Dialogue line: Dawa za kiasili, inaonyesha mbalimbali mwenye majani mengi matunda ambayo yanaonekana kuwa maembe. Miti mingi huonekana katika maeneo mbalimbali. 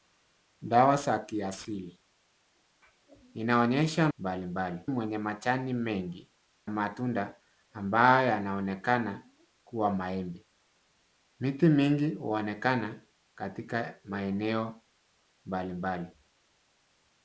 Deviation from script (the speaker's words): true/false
false